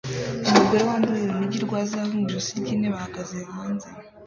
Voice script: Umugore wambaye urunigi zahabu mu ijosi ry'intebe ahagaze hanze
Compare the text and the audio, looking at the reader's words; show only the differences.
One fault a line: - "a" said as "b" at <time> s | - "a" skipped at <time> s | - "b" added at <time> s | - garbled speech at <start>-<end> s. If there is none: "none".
- "rwa" added at 1.6 s